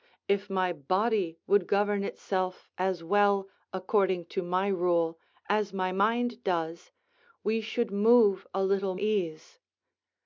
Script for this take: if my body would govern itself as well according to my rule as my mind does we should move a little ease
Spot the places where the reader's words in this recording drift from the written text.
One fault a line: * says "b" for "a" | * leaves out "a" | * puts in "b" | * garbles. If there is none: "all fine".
all fine